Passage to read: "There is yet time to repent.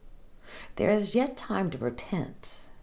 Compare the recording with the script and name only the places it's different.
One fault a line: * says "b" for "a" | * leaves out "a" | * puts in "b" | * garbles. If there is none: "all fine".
all fine